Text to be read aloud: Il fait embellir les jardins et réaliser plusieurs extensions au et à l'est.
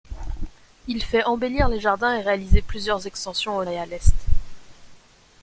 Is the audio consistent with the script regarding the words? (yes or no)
yes